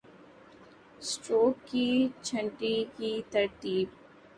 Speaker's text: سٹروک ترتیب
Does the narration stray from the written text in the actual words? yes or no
yes